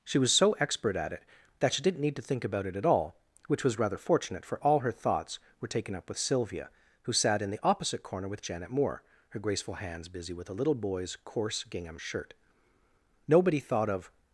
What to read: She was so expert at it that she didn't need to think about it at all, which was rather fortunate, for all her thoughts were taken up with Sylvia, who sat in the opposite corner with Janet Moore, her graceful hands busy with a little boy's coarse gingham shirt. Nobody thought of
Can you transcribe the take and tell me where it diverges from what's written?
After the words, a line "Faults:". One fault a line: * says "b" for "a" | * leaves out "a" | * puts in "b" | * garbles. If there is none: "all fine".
She was so expert at it that she didn't need to think about it at all, which was rather fortunate, for all her thoughts were taken up with Sylvia, who sat in the opposite corner with Janet Moore, her graceful hands busy with a little boy's coarse gingham shirt. Nobody thought of
Faults:
all fine